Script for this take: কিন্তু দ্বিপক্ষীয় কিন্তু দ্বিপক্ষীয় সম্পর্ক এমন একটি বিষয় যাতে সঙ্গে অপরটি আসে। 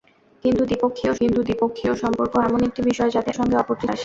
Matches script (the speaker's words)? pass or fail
pass